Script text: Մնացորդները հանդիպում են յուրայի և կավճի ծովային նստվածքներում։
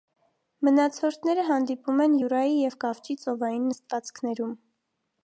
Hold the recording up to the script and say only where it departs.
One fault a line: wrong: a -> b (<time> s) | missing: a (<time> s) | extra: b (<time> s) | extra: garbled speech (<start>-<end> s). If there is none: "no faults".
no faults